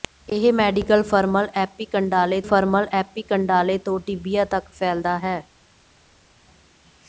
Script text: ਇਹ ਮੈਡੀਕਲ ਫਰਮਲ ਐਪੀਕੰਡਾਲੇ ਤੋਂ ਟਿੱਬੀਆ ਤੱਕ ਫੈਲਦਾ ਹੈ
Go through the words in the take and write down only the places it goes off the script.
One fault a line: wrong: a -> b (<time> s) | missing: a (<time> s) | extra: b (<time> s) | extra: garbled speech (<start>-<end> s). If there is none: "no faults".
extra: ਫਰਮਲ ਐਪੀਕੰਡਾਲੇ (2.4 s)